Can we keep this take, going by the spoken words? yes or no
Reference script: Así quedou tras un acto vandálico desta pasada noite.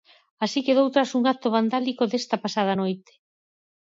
yes